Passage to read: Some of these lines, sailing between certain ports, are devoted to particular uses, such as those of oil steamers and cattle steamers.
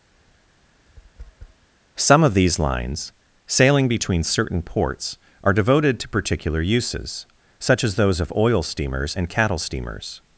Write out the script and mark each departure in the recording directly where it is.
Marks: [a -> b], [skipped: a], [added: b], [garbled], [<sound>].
[tap] Some of these lines, sailing between certain ports, are devoted to particular uses, such as those of oil steamers and cattle steamers.